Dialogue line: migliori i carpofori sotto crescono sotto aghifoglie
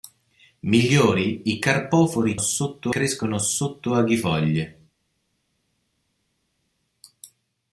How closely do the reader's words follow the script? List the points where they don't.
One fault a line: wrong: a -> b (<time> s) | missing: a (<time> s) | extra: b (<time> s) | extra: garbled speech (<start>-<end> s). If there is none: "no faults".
no faults